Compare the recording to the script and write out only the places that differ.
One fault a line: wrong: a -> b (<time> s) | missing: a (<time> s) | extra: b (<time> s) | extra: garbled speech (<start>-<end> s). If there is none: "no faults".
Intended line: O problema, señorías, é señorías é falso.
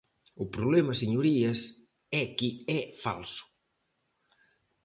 wrong: señorías -> que (2.4 s)